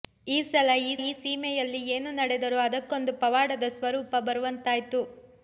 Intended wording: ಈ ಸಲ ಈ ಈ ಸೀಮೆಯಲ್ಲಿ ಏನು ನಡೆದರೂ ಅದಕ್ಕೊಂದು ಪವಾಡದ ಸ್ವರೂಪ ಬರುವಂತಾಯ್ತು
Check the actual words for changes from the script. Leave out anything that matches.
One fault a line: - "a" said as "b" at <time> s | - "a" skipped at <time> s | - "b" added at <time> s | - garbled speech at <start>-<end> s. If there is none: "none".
none